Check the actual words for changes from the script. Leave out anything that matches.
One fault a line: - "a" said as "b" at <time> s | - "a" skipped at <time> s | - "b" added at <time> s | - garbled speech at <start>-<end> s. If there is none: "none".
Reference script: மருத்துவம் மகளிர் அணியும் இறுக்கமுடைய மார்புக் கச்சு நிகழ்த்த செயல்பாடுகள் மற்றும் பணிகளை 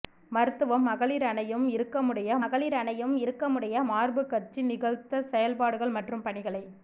- "மகளிர் அணியும் இறுக்கமுடைய" added at 2.4 s